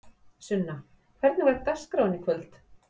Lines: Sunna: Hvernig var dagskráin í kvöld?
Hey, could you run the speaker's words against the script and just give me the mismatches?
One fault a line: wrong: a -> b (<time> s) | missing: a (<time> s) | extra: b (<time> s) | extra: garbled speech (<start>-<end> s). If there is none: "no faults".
no faults